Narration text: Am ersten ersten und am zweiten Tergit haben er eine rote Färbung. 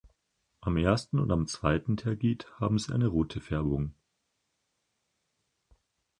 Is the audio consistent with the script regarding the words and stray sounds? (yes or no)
no